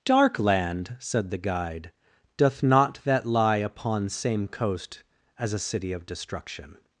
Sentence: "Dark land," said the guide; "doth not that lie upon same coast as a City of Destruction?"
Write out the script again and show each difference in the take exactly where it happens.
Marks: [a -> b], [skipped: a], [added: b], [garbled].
"Dark land," said the guide; "doth not that lie upon same coast as a City of Destruction?"